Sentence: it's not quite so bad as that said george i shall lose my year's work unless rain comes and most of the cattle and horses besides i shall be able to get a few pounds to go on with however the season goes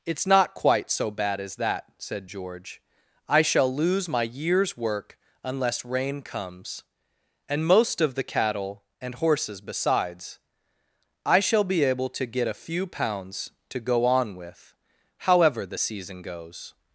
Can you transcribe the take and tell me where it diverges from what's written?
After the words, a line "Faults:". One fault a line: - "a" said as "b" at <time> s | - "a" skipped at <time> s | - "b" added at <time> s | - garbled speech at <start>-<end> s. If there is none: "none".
it's not quite so bad as that said george i shall lose my year's work unless rain comes and most of the cattle and horses besides i shall be able to get a few pounds to go on with however the season goes
Faults:
none